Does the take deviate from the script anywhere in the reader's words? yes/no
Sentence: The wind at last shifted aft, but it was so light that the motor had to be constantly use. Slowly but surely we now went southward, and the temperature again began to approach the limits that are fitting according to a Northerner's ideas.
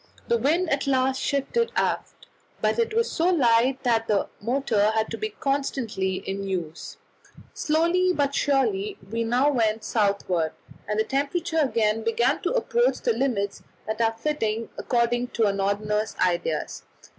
yes